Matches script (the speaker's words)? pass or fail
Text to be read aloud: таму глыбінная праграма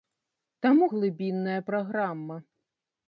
pass